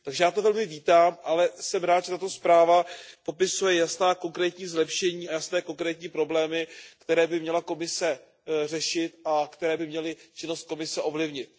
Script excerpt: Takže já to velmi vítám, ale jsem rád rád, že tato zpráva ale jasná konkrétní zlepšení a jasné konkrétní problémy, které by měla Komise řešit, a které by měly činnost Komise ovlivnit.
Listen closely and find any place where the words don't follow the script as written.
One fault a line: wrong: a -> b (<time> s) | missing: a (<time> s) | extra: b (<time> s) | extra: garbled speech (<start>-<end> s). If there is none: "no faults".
missing: rád (2.0 s)
wrong: ale -> popisuje (3.2 s)